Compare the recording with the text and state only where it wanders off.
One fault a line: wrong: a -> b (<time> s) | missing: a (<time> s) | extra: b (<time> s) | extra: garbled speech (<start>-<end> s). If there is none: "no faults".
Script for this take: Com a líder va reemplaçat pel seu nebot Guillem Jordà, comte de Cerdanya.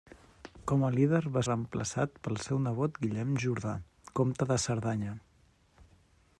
no faults